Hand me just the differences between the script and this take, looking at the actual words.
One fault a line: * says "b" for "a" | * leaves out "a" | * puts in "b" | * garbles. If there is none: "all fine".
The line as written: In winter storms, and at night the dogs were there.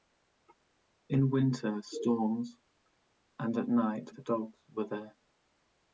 all fine